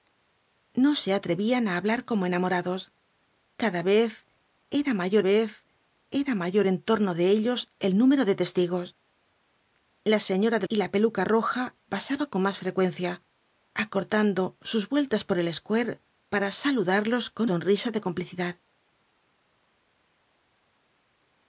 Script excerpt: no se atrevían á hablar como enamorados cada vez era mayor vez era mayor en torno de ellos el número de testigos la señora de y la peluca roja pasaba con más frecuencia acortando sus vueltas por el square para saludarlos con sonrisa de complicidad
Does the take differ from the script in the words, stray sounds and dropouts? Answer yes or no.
no